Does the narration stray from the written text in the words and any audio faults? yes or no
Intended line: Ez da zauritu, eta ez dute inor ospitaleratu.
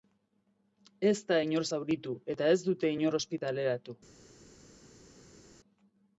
yes